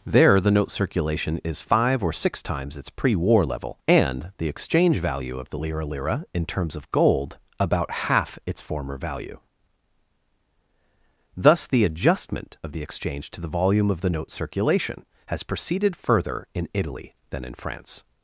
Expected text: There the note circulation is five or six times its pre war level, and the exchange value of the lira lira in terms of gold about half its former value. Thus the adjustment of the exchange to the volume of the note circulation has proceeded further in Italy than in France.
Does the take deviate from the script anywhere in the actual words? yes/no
no